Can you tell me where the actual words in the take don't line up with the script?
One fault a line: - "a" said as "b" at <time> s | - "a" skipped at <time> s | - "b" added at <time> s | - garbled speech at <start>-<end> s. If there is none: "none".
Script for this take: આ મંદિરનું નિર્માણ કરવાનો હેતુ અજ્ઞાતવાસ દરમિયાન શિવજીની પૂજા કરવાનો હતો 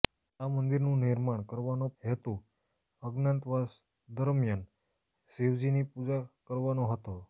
none